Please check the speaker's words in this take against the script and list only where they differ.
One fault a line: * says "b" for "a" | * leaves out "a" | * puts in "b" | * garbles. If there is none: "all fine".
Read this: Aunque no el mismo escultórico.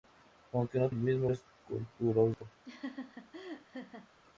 all fine